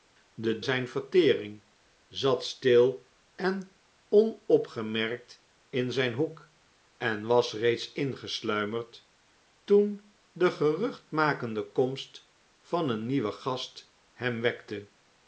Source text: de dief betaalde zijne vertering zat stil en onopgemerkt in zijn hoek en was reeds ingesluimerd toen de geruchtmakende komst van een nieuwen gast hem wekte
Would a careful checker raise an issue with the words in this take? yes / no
yes